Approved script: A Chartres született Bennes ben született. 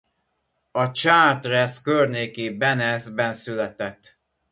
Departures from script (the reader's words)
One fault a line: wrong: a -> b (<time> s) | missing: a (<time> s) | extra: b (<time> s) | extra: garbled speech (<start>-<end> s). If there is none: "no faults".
wrong: született -> környéki (1.8 s)